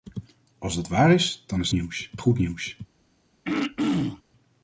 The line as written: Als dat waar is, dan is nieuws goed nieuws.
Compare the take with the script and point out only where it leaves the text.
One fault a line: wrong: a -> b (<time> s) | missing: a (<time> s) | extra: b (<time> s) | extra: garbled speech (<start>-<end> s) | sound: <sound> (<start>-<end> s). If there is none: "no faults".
sound: throat clearing (3.4-4.2 s)